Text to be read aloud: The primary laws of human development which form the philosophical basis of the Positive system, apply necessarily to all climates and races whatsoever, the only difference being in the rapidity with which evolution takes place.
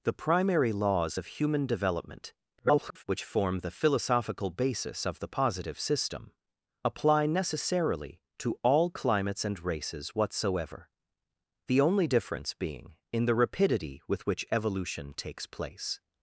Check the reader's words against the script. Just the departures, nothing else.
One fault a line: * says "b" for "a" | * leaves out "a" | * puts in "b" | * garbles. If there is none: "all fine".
* garbles